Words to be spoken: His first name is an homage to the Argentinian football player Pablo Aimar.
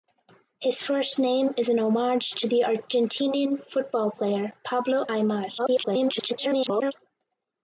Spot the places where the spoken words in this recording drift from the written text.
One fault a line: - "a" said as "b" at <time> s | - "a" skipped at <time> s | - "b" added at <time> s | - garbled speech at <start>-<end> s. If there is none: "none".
- garbled speech at 5.6-6.9 s